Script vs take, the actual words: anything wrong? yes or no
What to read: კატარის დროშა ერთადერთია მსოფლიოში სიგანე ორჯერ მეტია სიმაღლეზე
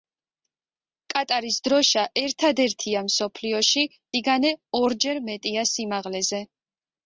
no